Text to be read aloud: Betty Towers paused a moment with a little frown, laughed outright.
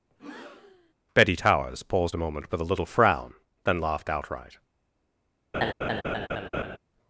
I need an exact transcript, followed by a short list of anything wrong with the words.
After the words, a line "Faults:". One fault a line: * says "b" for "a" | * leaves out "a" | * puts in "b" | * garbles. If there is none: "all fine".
Betty Towers paused a moment with a little frown, then laughed outright.
Faults:
* puts in "then"